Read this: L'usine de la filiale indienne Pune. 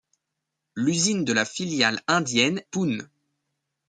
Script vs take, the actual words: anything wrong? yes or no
no